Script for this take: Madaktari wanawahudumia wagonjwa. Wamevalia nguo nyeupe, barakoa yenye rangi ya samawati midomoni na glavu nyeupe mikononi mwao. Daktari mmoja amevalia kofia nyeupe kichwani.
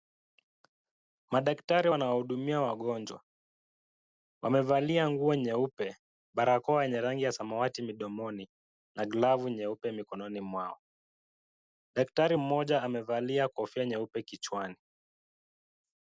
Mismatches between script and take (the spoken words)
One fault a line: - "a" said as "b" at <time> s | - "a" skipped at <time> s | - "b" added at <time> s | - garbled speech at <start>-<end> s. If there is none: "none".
none